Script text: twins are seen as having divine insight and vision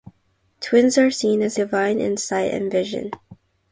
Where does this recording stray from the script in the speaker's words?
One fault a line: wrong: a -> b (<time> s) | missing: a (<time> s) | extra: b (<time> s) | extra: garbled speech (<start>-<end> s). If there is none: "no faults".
missing: having (1.6 s)